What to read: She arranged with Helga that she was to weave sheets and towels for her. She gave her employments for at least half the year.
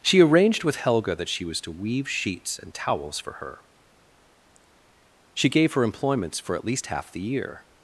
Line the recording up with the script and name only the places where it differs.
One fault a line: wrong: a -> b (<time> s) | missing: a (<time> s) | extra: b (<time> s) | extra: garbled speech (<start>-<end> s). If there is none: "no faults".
no faults